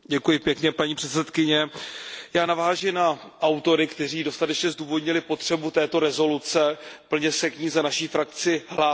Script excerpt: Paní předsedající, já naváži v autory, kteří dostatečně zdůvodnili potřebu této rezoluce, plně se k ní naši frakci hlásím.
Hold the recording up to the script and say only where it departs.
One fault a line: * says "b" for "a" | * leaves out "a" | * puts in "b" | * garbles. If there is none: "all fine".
* says "na" for "v"
* puts in "za"